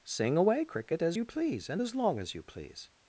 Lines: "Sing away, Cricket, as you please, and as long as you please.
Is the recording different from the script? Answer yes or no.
no